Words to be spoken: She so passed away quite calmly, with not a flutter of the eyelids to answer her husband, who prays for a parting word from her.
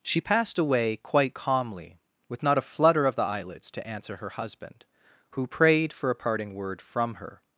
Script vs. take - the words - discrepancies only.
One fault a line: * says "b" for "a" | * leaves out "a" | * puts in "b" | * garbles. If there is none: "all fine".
* leaves out "so"
* says "prayed" for "prays"